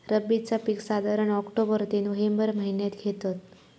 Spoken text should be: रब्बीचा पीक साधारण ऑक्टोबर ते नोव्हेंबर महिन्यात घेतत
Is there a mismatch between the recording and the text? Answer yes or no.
no